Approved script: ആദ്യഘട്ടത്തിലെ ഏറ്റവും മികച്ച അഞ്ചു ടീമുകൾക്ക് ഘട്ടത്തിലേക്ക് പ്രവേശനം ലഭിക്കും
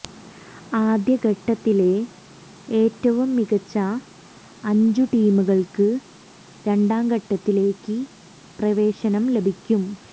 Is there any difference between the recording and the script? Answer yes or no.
yes